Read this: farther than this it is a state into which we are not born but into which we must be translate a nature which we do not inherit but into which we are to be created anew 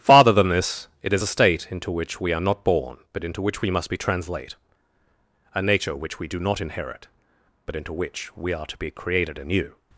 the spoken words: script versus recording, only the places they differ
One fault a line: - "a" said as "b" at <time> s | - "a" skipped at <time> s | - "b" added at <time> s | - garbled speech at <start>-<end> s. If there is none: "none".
none